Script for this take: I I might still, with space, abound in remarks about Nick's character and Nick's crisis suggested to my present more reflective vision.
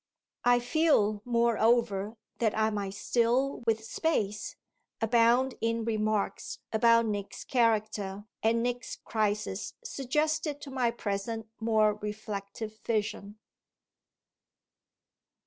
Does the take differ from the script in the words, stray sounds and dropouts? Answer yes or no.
yes